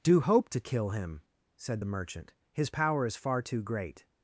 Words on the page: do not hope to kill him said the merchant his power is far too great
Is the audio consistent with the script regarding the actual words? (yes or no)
no